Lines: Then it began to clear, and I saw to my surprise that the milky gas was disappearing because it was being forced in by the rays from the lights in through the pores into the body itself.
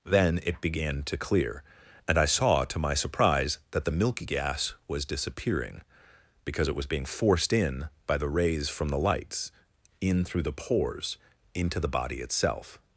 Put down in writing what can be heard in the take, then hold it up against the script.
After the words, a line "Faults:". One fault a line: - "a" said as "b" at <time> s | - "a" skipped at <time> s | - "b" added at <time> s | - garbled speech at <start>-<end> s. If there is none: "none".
Then it began to clear, and I saw to my surprise that the milky gas was disappearing because it was being forced in by the rays from the lights in through the pores into the body itself.
Faults:
none